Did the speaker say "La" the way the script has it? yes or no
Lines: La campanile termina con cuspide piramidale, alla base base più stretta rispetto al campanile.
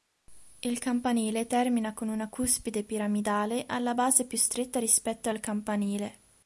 no